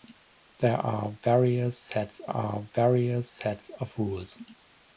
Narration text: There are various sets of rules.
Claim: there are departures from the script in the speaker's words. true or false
true